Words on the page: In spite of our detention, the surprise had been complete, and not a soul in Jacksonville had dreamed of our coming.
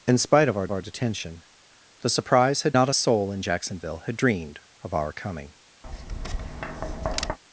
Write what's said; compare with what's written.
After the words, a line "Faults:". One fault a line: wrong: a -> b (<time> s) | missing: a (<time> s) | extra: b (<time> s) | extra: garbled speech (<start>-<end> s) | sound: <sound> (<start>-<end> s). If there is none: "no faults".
In spite of our our detention, the surprise had not a soul in Jacksonville had dreamed of our coming.
Faults:
extra: our (0.7 s)
missing: been complete and (2.7 s)
sound: tap (5.8-7.4 s)